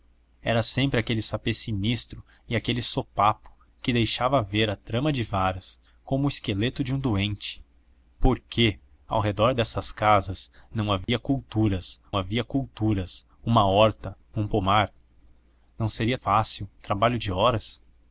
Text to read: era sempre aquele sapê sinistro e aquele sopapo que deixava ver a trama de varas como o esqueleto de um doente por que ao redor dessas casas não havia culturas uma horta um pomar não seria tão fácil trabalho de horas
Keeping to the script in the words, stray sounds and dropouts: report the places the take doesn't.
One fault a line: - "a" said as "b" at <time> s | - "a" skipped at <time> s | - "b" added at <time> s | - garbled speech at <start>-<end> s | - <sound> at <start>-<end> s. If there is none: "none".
- dropout at 11.0-11.1 s
- "havia culturas" added at 12.1 s
- "tão" skipped at 16.2 s